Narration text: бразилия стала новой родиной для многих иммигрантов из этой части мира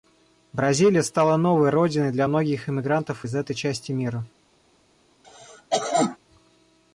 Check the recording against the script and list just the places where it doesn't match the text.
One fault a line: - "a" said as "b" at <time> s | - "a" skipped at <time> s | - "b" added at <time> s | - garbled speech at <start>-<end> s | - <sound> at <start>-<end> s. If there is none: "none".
- cough at 5.2-6.2 s